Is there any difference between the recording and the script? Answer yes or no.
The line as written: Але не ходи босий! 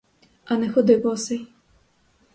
yes